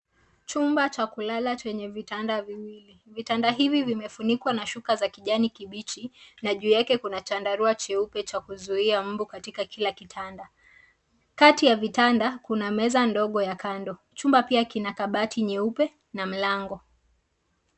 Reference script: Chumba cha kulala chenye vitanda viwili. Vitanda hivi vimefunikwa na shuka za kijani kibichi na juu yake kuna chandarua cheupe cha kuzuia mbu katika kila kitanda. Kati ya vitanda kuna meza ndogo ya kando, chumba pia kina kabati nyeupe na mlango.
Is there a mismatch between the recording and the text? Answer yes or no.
no